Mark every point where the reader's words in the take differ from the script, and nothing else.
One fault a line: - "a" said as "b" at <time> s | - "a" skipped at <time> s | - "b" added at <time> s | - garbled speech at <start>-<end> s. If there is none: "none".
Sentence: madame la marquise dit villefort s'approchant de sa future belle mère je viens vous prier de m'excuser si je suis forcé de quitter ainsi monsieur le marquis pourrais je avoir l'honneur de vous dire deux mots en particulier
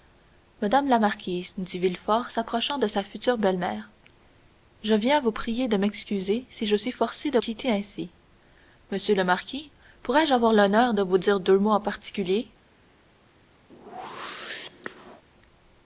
none